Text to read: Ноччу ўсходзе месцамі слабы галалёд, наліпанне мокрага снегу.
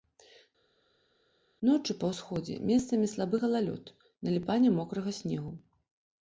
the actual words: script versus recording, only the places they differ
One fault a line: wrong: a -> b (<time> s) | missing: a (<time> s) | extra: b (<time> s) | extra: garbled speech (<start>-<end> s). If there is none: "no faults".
extra: па (2.0 s)